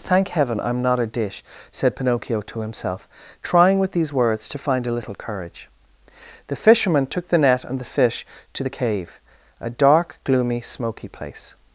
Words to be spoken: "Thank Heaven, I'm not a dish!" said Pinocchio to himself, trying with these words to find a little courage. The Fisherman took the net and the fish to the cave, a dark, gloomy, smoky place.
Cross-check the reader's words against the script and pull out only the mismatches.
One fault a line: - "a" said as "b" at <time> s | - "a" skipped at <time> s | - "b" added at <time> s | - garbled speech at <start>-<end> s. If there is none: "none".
none